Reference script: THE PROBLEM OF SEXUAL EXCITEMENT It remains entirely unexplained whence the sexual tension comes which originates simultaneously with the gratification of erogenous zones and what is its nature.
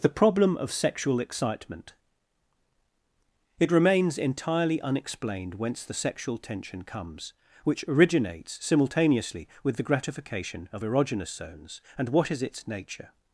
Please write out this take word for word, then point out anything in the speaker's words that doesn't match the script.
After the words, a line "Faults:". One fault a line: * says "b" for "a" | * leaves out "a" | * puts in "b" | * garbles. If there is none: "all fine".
THE PROBLEM OF SEXUAL EXCITEMENT It remains entirely unexplained whence the sexual tension comes which originates simultaneously with the gratification of erogenous zones and what is its nature.
Faults:
all fine